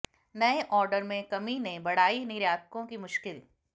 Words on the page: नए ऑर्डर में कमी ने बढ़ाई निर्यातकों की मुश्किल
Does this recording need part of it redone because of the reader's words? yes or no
no